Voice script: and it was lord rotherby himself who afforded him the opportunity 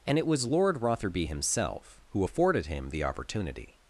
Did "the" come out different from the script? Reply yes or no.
no